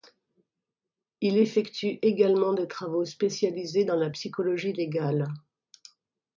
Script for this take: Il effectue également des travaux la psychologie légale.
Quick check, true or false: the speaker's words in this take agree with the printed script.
false